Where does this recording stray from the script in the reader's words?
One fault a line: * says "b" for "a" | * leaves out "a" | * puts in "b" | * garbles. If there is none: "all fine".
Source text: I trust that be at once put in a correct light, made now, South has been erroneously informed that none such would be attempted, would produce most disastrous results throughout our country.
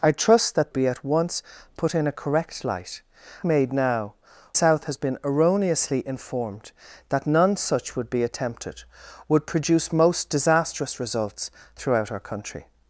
all fine